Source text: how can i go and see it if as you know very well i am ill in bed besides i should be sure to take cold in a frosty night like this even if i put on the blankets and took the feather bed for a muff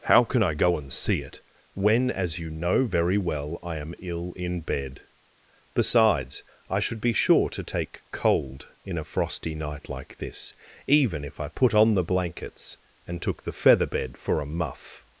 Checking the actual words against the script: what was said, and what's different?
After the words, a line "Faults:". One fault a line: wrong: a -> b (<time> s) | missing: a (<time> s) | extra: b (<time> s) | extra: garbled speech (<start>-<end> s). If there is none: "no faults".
how can i go and see it when as you know very well i am ill in bed besides i should be sure to take cold in a frosty night like this even if i put on the blankets and took the feather bed for a muff
Faults:
wrong: if -> when (1.7 s)